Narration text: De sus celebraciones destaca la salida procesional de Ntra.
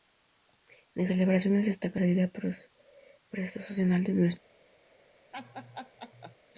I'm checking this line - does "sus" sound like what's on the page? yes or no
no